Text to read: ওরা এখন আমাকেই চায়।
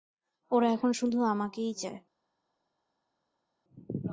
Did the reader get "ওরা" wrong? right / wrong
right